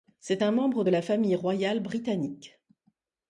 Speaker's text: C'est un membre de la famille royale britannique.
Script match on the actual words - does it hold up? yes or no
yes